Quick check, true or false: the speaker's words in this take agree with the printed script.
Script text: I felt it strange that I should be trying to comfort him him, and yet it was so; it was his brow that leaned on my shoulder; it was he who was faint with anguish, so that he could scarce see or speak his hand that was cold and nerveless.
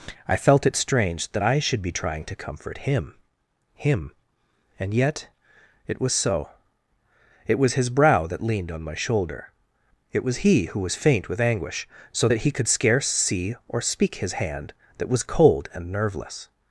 true